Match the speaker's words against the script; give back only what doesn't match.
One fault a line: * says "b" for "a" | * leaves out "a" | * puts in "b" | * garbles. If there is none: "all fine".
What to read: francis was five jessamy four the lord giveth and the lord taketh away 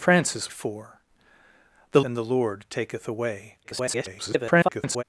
* leaves out "was five jessamy"
* leaves out "lord giveth"
* garbles